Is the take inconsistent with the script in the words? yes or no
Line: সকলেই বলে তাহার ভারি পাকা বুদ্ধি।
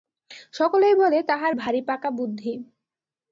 no